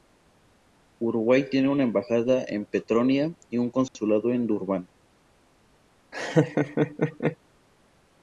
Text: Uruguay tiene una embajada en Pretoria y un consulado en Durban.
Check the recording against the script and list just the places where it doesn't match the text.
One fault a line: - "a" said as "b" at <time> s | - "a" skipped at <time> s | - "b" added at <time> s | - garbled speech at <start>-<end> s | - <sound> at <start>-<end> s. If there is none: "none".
- laugh at 6.1-7.4 s